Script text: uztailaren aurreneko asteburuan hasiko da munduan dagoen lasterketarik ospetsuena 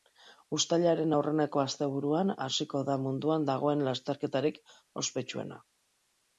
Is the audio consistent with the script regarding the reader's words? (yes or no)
yes